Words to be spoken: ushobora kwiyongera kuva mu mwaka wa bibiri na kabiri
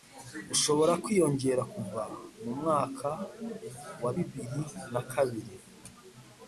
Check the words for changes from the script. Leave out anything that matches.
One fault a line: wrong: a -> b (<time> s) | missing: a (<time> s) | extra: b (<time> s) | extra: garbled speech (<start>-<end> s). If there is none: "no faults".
no faults